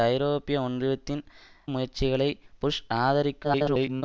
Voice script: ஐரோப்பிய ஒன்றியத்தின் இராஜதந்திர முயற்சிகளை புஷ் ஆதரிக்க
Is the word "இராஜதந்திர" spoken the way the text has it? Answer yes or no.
no